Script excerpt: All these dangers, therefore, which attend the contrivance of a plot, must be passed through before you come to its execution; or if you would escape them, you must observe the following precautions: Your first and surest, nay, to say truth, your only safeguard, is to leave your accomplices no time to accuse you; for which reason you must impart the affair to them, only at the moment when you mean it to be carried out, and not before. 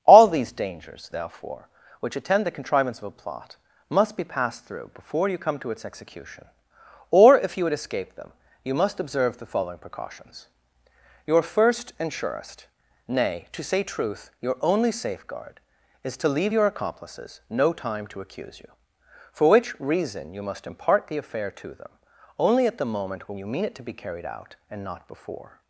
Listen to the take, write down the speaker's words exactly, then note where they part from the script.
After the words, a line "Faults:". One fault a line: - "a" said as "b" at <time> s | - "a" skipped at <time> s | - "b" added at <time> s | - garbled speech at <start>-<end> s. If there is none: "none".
All these dangers, therefore, which attend the contrivance of a plot, must be passed through before you come to its execution; or if you would escape them, you must observe the following precautions: Your first and surest, nay, to say truth, your only safeguard, is to leave your accomplices no time to accuse you; for which reason you must impart the affair to them, only at the moment when you mean it to be carried out, and not before.
Faults:
none